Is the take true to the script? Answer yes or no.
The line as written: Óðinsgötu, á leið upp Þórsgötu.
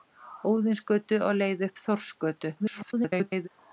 no